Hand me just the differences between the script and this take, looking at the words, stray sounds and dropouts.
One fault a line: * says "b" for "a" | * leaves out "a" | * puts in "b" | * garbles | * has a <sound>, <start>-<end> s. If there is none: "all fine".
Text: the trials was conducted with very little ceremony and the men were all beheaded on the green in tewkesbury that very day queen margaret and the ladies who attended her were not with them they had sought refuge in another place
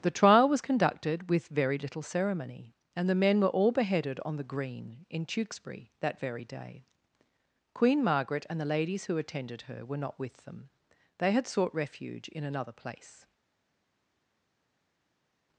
* says "trial" for "trials"